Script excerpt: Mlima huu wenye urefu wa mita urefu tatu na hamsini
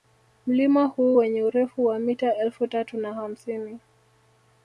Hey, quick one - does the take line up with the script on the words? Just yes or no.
no